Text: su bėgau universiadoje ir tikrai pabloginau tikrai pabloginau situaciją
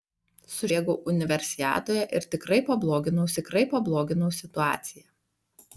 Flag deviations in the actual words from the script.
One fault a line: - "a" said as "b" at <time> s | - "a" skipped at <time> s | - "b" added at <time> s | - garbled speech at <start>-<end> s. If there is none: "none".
none